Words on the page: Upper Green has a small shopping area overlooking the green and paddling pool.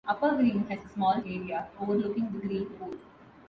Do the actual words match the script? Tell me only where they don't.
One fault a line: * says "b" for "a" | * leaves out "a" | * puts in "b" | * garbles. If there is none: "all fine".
* leaves out "shopping"
* leaves out "and paddling"